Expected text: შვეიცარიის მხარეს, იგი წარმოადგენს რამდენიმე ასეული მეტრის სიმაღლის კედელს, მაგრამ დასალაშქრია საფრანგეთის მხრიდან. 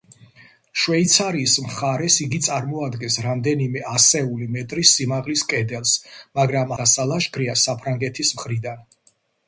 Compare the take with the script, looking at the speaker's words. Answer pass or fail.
pass